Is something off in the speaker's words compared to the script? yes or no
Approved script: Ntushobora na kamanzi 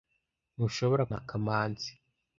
no